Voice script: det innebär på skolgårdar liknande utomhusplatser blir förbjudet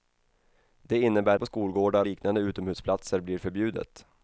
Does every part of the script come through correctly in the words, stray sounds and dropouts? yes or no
yes